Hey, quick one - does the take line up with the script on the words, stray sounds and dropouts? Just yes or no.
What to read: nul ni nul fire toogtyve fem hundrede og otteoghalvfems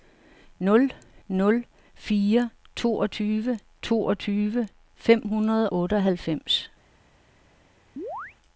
no